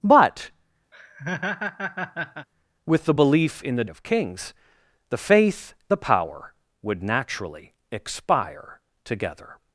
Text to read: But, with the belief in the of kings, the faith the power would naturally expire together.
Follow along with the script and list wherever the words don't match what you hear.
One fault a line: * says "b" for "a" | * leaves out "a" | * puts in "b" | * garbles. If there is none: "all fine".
all fine